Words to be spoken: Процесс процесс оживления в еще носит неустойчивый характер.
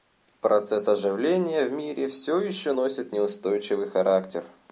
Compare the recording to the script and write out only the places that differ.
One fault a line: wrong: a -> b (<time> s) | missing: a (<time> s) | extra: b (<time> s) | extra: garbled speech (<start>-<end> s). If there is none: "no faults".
missing: процесс (0.9 s)
extra: мире все (1.7 s)